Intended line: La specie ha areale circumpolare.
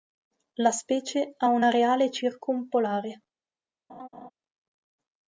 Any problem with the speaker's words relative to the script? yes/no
yes